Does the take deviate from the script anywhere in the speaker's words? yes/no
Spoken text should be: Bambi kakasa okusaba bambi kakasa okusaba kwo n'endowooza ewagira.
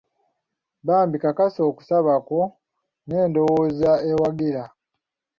yes